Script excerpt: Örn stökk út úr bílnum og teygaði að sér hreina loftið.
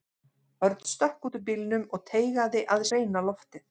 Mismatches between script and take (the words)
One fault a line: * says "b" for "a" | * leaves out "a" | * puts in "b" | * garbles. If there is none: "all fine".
* leaves out "sér"